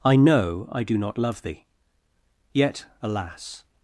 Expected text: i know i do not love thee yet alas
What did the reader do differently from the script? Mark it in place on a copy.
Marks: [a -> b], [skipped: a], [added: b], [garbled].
i know i do not love thee yet alas